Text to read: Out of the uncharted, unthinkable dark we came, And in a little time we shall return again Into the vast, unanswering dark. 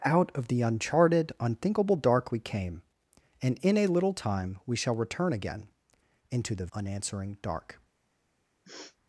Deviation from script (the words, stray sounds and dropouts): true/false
true